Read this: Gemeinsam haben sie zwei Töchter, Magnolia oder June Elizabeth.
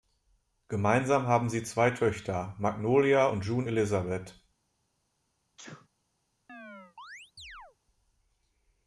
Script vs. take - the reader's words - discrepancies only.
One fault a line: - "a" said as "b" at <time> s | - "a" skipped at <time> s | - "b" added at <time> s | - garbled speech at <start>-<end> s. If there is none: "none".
- "oder" said as "und" at 3.2 s